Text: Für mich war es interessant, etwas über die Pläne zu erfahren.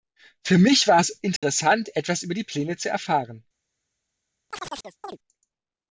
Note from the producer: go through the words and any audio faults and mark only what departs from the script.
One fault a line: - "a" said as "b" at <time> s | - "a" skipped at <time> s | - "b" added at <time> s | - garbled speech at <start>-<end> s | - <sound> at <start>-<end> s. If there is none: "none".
- dropout at 1.4-1.4 s
- chirp at 4.5-5.2 s